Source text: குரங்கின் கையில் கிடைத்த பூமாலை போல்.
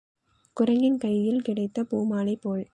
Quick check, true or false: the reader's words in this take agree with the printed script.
true